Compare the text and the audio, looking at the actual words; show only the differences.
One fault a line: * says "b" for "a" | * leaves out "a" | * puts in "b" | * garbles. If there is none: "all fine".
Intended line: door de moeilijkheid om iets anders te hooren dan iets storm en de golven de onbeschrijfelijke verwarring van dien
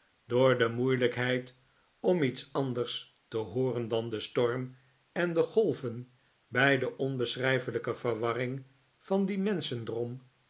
* says "den" for "iets"
* puts in "bij"